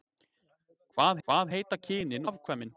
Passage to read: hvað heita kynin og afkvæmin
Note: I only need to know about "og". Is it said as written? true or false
false